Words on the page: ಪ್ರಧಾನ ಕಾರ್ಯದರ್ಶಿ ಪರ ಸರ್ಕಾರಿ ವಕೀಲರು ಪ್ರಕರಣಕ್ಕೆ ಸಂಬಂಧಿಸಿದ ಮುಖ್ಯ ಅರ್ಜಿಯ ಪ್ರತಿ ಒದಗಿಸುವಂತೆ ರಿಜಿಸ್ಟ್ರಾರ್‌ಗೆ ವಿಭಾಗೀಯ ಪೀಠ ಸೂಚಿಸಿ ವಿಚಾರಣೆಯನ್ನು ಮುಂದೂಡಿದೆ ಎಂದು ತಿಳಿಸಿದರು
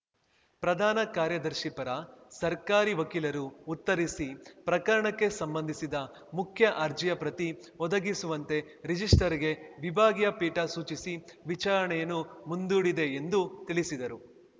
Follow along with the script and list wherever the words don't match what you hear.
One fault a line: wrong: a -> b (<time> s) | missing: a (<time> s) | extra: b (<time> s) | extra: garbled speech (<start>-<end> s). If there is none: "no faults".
extra: ಉತ್ತರಿಸಿ (3.7 s)